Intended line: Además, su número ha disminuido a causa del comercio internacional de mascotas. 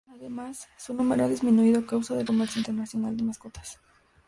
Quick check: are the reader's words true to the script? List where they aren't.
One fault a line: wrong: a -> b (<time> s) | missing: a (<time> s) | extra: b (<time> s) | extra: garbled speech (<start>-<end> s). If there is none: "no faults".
no faults